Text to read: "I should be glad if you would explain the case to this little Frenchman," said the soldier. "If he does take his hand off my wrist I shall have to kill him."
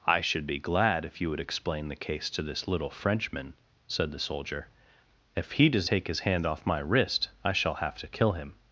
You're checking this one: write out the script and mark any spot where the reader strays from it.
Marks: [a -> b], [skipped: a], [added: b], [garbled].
"I should be glad if you would explain the case to this little Frenchman," said the soldier. "If he does take his hand off my wrist I shall have to kill him."